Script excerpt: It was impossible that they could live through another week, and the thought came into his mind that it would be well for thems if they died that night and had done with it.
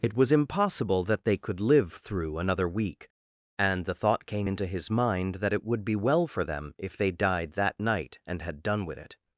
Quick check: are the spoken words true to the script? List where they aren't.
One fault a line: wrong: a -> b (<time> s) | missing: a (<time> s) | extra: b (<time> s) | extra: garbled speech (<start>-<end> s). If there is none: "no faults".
wrong: thems -> them (6.4 s)